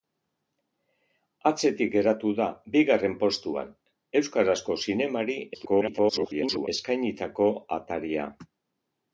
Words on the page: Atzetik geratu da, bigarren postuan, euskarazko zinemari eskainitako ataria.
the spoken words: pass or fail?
fail